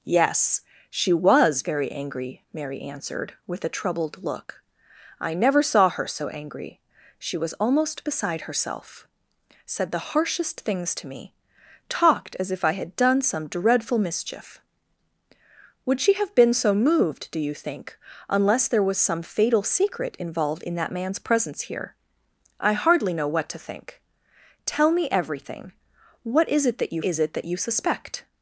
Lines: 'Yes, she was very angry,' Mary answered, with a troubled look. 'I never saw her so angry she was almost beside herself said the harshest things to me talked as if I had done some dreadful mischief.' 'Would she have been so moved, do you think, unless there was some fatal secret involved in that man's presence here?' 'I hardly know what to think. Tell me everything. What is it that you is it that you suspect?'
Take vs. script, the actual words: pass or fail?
pass